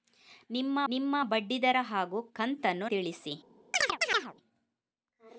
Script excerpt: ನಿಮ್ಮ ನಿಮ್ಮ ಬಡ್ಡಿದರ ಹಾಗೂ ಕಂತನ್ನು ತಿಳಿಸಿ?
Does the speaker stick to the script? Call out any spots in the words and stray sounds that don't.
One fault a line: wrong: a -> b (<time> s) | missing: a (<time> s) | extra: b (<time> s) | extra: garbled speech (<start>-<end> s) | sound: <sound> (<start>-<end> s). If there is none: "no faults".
sound: chirp (3.7-4.3 s)